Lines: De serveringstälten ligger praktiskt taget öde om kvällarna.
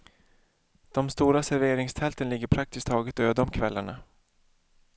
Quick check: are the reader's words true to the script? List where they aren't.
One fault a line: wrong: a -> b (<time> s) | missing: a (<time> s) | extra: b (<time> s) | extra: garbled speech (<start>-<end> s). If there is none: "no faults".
extra: stora (1.1 s)